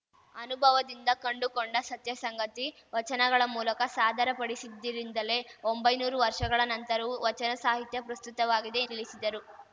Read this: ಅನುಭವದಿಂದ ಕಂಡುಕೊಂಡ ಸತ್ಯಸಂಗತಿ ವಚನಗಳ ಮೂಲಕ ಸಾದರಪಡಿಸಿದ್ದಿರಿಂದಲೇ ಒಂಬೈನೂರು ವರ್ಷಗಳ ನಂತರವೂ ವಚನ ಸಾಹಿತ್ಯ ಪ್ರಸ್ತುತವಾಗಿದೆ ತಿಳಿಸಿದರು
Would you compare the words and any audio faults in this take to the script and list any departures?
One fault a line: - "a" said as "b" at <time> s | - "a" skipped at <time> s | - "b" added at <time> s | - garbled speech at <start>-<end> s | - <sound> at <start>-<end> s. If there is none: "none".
none